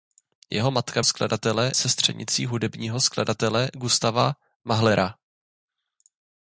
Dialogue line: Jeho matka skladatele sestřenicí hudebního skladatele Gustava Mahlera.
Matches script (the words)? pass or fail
pass